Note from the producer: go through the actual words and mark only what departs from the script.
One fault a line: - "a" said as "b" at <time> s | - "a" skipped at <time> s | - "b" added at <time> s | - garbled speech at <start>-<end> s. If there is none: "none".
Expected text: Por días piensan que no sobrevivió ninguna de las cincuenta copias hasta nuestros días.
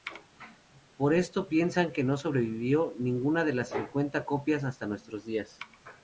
- "días" said as "esto" at 1.1 s